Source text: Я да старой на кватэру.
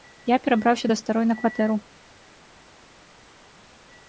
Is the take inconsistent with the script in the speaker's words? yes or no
yes